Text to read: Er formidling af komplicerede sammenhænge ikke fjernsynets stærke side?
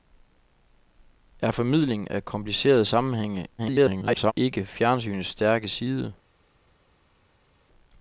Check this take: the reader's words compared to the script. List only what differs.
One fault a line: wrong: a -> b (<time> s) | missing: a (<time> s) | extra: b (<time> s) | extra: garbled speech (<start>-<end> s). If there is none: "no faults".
extra: garbled speech (3.6-4.3 s)